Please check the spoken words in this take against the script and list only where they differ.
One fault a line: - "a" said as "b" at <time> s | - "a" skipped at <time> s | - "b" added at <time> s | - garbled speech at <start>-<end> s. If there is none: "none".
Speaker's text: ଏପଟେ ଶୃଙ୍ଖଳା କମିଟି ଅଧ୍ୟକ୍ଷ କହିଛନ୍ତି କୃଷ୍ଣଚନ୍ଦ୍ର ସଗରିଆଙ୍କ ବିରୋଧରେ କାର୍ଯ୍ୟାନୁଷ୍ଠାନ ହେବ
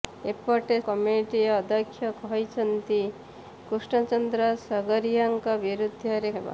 - "ଶୃଙ୍ଖଳା" skipped at 0.8 s
- "କାର୍ଯ୍ୟାନୁଷ୍ଠାନ" skipped at 6.3 s